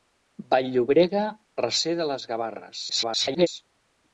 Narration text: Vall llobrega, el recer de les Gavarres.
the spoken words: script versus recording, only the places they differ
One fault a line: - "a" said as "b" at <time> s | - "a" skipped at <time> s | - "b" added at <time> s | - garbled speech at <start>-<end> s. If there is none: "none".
- "el" skipped at 1.2 s
- garbled speech at 2.9-3.5 s